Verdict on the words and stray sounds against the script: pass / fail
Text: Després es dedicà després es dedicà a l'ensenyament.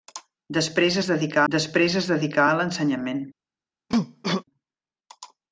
fail